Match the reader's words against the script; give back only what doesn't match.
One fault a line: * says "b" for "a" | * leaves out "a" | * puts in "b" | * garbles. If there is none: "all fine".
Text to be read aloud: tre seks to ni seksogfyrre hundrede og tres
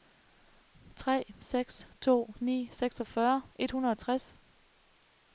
* puts in "et"